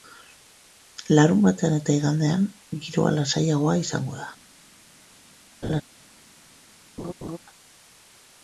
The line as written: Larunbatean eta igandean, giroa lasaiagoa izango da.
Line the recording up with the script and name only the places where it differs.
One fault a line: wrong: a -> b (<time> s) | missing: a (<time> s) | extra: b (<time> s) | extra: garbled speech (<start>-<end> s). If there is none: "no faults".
no faults